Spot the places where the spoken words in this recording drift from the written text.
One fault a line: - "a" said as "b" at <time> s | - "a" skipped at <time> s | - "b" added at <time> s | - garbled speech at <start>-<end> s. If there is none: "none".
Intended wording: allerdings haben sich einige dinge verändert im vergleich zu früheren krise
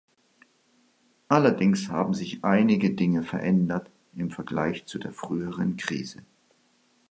- "der" added at 5.0 s